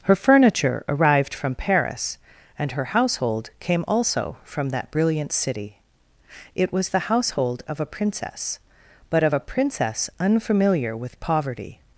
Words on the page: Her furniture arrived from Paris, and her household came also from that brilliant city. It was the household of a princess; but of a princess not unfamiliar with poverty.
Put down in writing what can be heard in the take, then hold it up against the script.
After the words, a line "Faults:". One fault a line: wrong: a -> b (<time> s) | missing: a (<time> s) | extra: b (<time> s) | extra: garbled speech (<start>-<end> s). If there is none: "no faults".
Her furniture arrived from Paris, and her household came also from that brilliant city. It was the household of a princess; but of a princess unfamiliar with poverty.
Faults:
missing: not (10.1 s)